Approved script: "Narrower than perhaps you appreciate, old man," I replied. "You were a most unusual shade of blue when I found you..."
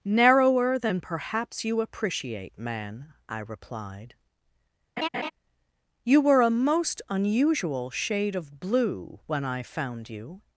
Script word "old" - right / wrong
wrong